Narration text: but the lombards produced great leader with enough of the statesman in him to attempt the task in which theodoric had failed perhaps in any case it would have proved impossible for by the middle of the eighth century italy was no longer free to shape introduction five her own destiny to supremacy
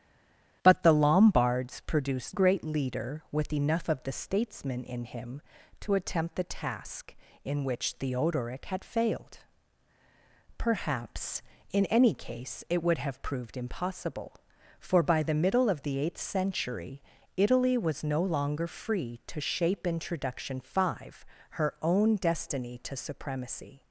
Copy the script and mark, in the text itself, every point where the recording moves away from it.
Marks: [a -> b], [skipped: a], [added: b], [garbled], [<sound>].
but the lombards produced great leader with enough of the statesman in him to attempt the task in which theodoric had failed perhaps in any case it would have proved impossible for by the middle of the eighth century italy was no longer free to shape introduction five her own destiny to supremacy